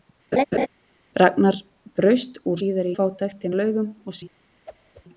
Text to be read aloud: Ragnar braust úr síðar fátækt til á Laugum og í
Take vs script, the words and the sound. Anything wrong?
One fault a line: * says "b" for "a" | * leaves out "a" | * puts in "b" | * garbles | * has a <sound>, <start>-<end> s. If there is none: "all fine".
* has a laugh, 0.3-0.7 s
* has a whoosh, 4.7-5.0 s